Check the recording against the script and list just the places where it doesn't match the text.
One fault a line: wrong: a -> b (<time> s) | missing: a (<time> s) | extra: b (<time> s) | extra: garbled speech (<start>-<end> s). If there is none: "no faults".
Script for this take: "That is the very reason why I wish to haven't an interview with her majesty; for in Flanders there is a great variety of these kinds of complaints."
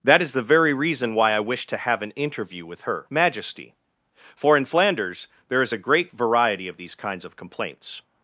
wrong: haven't -> have (1.8 s)